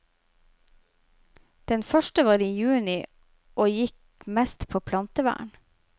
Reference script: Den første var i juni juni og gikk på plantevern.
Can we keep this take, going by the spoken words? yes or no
no